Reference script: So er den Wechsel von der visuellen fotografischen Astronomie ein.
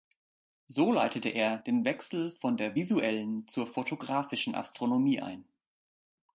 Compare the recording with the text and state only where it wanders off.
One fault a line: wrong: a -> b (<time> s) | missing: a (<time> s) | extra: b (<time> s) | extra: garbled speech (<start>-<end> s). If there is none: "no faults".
extra: leitete (0.9 s)
extra: zur (3.5 s)